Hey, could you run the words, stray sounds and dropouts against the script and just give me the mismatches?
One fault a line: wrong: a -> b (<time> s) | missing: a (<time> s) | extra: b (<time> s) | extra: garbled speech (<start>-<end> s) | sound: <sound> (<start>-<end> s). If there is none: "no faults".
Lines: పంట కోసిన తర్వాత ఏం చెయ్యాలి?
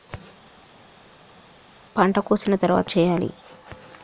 missing: ఏం (2.9 s)